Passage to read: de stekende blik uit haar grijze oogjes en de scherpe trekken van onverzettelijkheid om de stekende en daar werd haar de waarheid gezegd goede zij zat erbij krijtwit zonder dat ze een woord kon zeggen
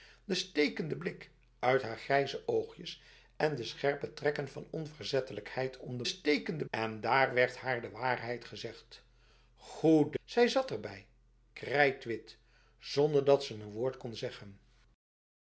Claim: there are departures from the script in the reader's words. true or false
false